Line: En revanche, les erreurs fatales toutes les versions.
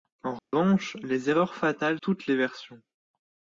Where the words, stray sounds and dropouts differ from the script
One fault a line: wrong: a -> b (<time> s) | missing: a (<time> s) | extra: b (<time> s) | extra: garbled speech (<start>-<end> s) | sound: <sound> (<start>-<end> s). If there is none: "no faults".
sound: dropout (0.4-0.5 s)